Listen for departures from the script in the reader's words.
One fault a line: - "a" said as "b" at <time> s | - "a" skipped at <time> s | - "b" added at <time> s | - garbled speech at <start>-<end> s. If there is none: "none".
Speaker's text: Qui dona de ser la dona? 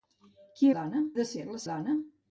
none